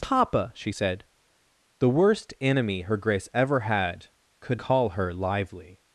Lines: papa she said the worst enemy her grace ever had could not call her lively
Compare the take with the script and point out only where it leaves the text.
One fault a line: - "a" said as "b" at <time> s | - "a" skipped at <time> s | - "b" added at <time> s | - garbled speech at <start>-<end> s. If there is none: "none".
- "not" skipped at 4.6 s